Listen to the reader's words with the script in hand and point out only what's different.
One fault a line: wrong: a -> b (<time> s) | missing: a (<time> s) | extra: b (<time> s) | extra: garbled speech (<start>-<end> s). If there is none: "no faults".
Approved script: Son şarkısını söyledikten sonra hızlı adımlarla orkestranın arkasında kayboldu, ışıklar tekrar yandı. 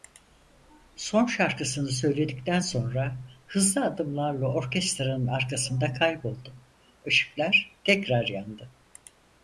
no faults